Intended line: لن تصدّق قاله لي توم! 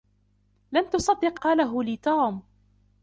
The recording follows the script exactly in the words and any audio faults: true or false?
true